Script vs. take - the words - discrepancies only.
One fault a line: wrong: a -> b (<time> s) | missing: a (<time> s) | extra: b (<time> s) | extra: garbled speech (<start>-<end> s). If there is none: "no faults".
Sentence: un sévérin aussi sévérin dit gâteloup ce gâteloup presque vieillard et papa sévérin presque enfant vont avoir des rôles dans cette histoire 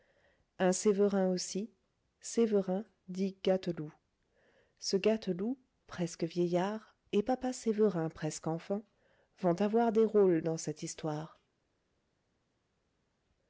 no faults